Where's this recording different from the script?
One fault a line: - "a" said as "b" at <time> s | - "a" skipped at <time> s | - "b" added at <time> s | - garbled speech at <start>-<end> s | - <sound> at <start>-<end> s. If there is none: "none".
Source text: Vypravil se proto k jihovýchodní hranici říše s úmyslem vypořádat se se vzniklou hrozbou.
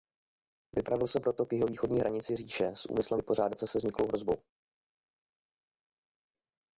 none